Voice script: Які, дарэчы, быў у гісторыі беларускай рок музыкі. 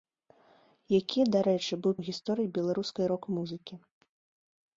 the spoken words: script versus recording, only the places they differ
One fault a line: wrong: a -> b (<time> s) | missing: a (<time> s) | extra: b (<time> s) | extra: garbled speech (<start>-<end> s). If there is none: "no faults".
no faults